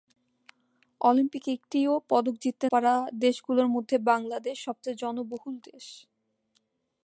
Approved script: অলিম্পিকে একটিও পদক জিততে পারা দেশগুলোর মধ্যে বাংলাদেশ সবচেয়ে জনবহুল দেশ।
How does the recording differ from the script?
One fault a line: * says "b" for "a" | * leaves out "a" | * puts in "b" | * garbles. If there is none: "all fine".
all fine